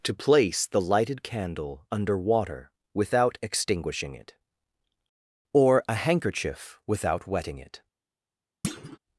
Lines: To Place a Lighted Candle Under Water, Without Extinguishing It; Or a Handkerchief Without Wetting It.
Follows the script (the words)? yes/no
no